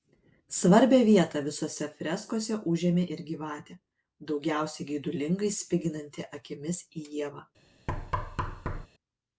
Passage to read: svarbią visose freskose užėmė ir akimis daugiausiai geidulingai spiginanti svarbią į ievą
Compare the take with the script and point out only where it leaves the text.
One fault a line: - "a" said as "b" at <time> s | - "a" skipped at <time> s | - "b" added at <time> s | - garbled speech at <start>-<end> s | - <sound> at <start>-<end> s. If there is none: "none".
- "vietą" added at 1.1 s
- "akimis" said as "gyvatė" at 3.3 s
- "svarbią" said as "akimis" at 6.4 s
- thud at 7.9-8.9 s